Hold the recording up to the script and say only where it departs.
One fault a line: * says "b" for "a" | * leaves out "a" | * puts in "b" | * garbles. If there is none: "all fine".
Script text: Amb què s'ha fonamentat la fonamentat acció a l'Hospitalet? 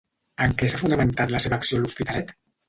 * says "En" for "Amb"
* says "seva" for "fonamentat"